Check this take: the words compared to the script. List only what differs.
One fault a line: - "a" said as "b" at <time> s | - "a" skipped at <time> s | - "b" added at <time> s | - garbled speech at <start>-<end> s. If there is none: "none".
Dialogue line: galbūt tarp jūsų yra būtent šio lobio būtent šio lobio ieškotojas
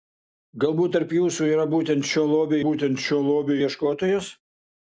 none